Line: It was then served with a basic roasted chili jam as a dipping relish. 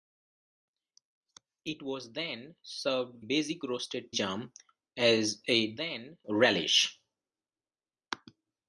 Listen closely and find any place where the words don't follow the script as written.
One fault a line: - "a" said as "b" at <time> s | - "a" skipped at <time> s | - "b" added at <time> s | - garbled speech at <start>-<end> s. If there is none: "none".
- "with a" skipped at 3.2 s
- "chili" skipped at 4.1 s
- "dipping" said as "then" at 5.8 s